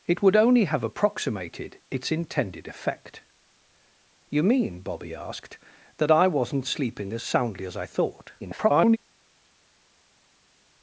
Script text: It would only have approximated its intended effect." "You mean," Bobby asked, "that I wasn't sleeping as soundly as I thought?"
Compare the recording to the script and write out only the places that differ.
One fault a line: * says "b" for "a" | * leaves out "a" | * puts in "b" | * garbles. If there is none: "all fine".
* garbles